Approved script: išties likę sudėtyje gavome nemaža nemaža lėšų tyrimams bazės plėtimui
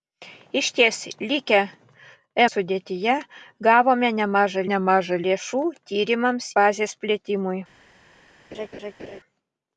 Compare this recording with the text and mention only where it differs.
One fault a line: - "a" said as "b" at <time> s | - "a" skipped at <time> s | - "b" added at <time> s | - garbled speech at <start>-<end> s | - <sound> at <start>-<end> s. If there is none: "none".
- laugh at 8.5-9.2 s